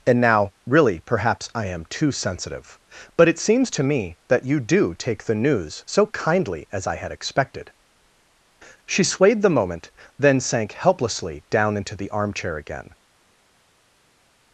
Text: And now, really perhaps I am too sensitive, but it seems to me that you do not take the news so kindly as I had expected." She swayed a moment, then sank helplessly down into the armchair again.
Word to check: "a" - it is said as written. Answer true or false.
false